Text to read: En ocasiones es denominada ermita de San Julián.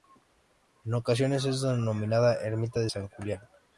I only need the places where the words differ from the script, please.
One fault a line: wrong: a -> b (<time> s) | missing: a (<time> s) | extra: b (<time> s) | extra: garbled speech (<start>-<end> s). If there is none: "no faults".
no faults